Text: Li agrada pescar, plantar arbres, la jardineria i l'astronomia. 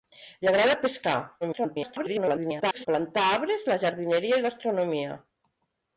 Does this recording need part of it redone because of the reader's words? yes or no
yes